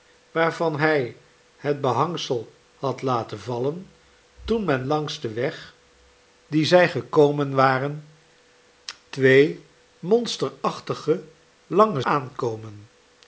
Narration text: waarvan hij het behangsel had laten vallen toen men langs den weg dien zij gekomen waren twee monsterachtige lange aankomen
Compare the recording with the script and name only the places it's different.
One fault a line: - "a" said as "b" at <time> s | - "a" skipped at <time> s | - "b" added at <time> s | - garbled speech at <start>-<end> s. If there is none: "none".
none